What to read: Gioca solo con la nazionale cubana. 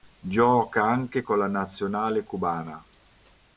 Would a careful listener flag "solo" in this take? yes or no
yes